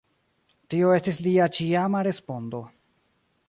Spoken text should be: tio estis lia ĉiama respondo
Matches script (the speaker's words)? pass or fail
pass